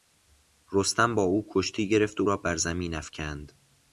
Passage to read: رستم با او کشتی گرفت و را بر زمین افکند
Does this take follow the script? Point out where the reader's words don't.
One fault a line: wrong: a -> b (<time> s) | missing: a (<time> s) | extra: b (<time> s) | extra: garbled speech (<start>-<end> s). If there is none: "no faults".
no faults